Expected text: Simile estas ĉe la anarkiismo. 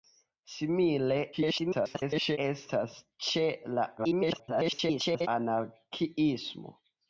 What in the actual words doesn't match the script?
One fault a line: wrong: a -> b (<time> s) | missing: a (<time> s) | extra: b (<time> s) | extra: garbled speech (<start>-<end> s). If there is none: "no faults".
extra: garbled speech (1.3-2.4 s)
extra: garbled speech (4.0-5.3 s)